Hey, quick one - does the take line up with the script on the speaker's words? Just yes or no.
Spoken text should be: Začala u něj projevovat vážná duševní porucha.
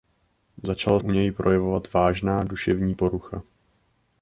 yes